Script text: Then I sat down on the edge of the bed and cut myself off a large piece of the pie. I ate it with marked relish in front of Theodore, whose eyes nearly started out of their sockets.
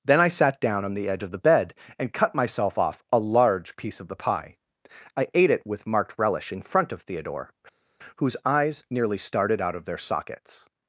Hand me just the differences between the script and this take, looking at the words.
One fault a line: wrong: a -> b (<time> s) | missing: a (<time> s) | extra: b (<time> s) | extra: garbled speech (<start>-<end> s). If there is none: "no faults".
no faults